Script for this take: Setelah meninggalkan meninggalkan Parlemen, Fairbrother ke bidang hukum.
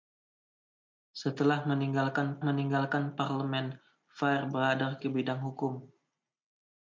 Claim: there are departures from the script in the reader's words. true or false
false